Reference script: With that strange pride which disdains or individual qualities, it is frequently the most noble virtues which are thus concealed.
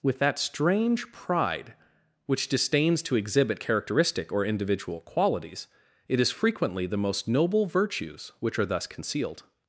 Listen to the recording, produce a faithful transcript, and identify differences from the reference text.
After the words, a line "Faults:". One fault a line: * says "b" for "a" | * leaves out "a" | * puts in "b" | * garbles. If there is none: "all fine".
With that strange pride which disdains to exhibit characteristic or individual qualities, it is frequently the most noble virtues which are thus concealed.
Faults:
* puts in "to exhibit characteristic"